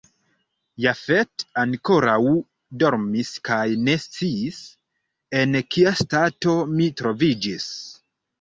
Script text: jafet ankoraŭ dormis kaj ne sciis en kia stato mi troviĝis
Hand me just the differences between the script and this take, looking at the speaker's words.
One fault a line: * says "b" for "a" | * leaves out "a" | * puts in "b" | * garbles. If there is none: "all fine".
all fine